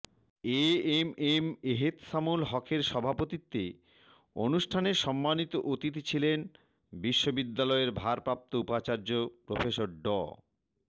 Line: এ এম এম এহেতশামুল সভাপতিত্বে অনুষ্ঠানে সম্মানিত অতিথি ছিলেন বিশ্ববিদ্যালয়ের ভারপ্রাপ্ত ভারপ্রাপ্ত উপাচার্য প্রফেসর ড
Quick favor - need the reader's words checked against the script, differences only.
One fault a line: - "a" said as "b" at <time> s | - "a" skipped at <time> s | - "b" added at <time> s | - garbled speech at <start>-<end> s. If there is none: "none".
- "হকের" added at 2.5 s
- "ভারপ্রাপ্ত" skipped at 8.5 s